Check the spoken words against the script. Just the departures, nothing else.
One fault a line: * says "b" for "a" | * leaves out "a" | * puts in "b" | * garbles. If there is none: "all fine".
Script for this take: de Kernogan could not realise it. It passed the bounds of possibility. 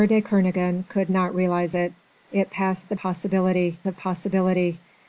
* says "possibility" for "bounds"